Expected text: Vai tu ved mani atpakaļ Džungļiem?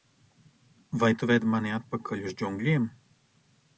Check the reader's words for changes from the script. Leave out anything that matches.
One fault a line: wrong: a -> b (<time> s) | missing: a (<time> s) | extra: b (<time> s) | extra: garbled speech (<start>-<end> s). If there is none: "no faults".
extra: uz (2.3 s)